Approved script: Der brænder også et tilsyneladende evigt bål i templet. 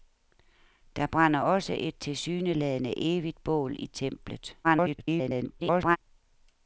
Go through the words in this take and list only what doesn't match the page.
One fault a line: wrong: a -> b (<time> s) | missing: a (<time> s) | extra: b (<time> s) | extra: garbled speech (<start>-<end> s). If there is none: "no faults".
extra: garbled speech (4.6-6.0 s)